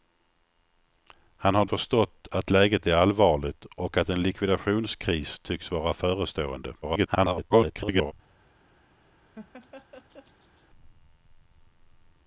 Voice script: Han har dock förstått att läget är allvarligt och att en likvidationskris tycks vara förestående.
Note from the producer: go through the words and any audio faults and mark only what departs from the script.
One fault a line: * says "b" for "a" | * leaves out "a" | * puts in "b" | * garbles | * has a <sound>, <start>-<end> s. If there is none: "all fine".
* leaves out "dock"
* garbles
* has a laugh, 9.3-10.7 s